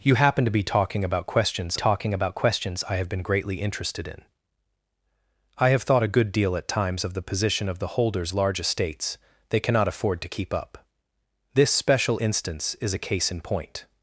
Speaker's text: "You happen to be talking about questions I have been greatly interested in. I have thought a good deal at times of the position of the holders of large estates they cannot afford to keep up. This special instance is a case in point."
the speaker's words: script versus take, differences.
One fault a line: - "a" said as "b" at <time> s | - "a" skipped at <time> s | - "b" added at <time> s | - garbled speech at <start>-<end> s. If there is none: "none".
- "talking about questions" added at 1.7 s
- "of" skipped at 8.3 s